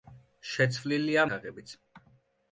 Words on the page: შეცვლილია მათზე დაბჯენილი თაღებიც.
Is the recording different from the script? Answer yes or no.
yes